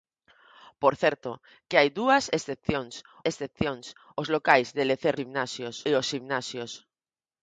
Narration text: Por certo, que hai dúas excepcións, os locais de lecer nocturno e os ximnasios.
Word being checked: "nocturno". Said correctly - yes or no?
no